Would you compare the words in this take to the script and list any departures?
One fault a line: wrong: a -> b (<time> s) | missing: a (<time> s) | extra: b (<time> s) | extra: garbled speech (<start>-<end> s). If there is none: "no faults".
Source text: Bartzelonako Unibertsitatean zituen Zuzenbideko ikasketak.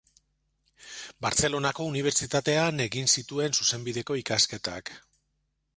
extra: egin (2.9 s)